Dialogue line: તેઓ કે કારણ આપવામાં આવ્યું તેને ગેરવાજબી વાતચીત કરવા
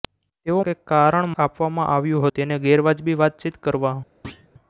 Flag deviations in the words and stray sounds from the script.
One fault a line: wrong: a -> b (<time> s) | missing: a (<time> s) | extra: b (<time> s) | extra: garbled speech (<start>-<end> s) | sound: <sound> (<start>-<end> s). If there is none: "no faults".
sound: thud (4.2-4.5 s)